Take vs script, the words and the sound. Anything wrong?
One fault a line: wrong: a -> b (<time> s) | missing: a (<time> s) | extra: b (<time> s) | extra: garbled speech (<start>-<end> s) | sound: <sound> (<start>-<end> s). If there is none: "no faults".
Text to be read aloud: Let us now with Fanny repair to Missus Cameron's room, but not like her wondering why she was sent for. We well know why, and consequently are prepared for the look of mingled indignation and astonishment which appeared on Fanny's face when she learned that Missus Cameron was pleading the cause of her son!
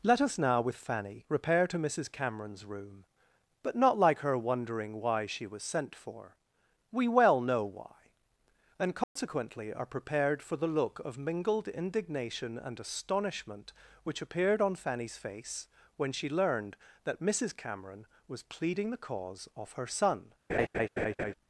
sound: dropout (9.0-9.2 s)
sound: laugh (20.5-21.3 s)